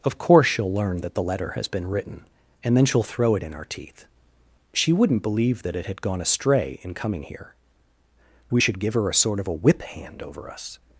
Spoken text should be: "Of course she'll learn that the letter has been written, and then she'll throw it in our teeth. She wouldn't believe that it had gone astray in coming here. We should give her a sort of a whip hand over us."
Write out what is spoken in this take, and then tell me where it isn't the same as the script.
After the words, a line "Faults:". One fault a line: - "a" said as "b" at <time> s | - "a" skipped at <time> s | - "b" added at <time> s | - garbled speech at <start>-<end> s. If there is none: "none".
"Of course she'll learn that the letter has been written, and then she'll throw it in our teeth. She wouldn't believe that it had gone astray in coming here. We should give her a sort of a whip hand over us."
Faults:
none